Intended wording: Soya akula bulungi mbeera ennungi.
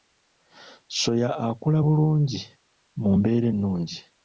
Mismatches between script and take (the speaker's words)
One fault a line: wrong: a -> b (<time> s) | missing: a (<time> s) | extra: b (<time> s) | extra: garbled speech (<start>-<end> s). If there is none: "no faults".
extra: mu (3.0 s)